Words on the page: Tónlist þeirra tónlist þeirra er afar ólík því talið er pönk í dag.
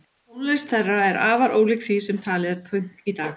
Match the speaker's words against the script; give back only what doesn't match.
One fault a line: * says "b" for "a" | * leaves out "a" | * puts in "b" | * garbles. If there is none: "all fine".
* leaves out "tónlist þeirra"
* puts in "sem"